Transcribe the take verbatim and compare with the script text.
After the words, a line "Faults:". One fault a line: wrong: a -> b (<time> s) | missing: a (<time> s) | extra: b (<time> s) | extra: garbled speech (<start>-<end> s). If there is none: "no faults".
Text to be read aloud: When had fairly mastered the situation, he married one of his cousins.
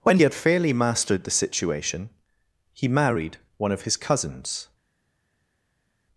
When had fairly mastered the situation, he married one of his cousins.
Faults:
no faults